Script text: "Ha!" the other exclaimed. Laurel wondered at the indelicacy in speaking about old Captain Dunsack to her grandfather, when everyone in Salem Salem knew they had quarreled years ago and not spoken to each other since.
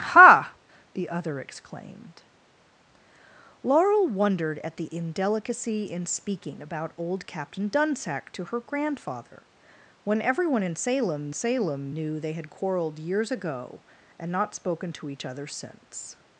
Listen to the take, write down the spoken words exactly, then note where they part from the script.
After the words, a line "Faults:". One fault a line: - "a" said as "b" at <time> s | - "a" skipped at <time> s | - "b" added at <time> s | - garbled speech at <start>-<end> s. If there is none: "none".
"Ha!" the other exclaimed. Laurel wondered at the indelicacy in speaking about old Captain Dunsack to her grandfather, when everyone in Salem Salem knew they had quarreled years ago and not spoken to each other since.
Faults:
none